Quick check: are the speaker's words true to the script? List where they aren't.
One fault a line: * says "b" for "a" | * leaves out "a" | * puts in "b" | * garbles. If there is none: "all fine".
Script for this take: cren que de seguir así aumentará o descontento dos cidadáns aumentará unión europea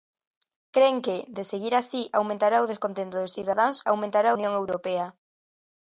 all fine